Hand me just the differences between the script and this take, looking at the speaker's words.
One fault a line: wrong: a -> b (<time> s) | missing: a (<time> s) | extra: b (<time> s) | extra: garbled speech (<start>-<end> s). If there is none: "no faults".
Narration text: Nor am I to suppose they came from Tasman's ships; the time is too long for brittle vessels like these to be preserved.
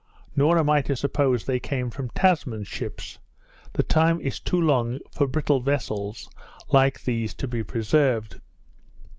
no faults